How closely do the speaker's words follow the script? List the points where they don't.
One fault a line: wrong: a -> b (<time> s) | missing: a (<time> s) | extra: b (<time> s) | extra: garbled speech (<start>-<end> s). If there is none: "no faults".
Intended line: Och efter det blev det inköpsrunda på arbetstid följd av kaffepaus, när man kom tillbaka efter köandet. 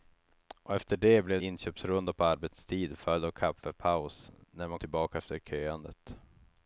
missing: det (1.4 s)
missing: kom (4.8 s)